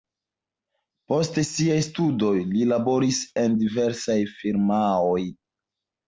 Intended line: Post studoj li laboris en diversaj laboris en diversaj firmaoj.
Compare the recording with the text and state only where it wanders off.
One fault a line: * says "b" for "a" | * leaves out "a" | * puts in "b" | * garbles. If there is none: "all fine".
* puts in "siaj"
* leaves out "laboris en diversaj"